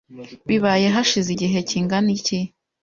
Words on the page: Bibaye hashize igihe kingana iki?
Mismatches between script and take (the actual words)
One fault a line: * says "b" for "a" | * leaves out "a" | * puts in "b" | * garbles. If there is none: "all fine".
all fine